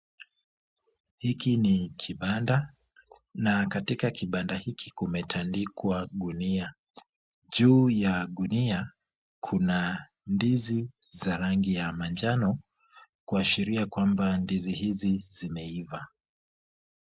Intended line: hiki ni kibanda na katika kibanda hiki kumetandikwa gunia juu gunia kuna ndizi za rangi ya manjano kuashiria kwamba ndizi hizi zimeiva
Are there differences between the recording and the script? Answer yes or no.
yes